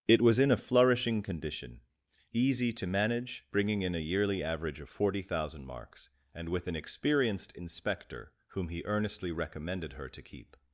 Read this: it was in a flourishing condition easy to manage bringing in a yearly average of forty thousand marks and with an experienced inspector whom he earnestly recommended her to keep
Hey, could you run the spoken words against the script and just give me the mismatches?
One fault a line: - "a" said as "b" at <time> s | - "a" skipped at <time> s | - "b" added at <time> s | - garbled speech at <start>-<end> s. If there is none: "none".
none